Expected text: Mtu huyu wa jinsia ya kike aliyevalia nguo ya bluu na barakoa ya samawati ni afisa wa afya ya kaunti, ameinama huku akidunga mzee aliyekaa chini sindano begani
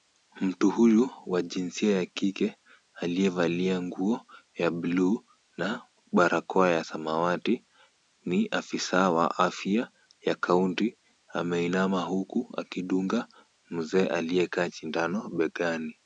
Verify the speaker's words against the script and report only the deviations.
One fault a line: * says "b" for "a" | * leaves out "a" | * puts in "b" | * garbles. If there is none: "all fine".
* leaves out "chini"